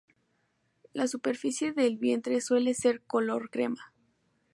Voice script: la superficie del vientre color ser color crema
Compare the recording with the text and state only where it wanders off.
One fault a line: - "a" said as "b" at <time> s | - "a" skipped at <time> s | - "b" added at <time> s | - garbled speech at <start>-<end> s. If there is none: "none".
- "color" said as "suele" at 2.4 s